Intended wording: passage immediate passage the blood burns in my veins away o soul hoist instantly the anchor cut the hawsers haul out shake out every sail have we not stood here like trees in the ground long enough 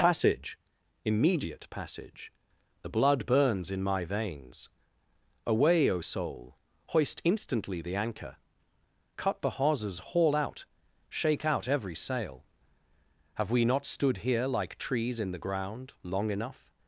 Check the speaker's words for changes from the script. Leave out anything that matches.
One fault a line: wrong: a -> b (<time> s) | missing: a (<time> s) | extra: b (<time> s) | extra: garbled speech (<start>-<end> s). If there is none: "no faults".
no faults